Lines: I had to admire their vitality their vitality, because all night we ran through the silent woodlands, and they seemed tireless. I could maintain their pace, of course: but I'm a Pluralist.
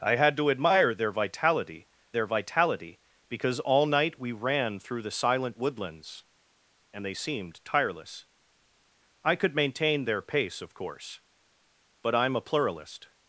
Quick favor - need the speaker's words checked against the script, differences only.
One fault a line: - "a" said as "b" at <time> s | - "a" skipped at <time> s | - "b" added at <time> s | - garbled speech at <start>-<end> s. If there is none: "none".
none